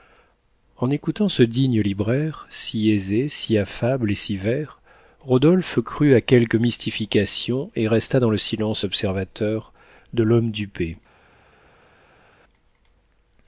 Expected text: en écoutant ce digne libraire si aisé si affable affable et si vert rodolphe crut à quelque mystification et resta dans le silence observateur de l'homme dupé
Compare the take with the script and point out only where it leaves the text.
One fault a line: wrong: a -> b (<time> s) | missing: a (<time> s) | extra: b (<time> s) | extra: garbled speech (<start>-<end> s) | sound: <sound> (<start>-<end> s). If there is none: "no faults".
missing: affable (4.1 s)